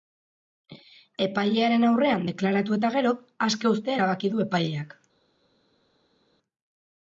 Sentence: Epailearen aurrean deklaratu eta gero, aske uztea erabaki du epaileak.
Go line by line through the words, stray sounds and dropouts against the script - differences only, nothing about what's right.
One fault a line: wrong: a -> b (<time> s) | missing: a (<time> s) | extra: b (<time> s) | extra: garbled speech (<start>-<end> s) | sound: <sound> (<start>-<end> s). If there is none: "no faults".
no faults